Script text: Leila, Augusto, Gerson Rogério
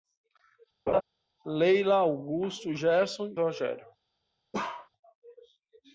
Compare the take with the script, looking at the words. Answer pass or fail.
pass